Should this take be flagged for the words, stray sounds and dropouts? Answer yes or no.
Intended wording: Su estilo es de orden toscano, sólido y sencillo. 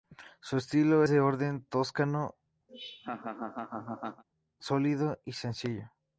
yes